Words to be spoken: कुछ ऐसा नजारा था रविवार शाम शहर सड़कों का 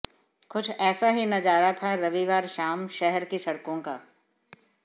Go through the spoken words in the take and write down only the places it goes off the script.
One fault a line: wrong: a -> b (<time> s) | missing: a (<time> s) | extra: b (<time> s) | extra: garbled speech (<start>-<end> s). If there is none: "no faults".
extra: ही (1.1 s)
extra: की (3.2 s)